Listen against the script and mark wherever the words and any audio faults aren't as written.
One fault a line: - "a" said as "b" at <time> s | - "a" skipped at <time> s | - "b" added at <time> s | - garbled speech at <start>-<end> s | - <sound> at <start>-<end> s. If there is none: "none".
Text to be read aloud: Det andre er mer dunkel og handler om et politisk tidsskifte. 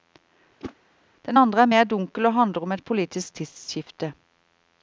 - whoosh at 0.6-0.7 s
- "Det" said as "Den" at 1.3 s